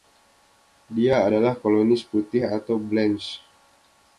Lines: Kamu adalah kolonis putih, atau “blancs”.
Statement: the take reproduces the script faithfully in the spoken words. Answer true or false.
false